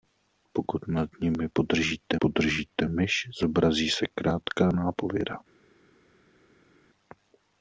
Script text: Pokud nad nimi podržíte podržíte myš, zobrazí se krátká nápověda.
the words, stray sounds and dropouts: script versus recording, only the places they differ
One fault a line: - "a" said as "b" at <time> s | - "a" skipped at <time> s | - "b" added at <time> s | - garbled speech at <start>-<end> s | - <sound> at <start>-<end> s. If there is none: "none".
none